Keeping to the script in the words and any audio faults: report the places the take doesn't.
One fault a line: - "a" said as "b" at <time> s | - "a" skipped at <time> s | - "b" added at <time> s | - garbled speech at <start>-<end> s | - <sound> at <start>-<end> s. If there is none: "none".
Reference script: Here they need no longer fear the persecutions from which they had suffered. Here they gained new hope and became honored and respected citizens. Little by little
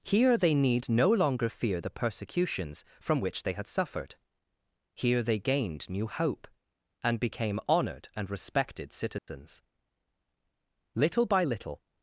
- dropout at 9.2-9.3 s